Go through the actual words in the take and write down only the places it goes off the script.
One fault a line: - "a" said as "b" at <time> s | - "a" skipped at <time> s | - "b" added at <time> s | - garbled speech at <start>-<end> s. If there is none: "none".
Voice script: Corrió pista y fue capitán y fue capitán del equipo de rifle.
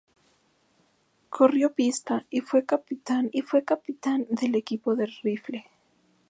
none